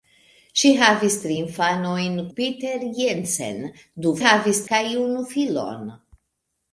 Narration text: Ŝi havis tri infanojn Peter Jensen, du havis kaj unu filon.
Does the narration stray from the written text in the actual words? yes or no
no